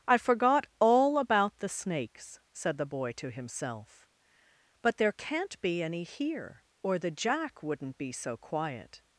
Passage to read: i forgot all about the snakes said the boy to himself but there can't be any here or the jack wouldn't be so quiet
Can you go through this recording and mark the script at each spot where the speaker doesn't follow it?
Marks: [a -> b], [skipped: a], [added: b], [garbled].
i forgot all about the snakes said the boy to himself but there can't be any here or the jack wouldn't be so quiet